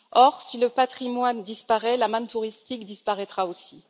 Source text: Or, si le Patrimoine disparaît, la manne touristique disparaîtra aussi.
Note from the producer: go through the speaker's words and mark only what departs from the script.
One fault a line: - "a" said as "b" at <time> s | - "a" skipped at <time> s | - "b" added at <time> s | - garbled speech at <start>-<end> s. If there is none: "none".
none